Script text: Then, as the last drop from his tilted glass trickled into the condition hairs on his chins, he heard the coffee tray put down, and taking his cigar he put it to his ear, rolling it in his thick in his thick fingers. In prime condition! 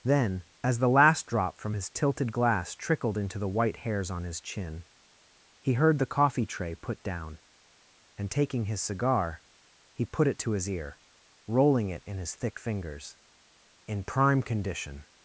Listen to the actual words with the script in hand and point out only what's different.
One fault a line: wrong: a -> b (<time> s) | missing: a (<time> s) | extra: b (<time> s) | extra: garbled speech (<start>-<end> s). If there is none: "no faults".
wrong: condition -> white (3.5 s)
wrong: chins -> chin (4.4 s)
missing: in his thick (12.6 s)